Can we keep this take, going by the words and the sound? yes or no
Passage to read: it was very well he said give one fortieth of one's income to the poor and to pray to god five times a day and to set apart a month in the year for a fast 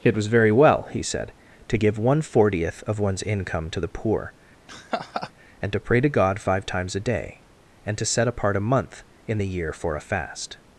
no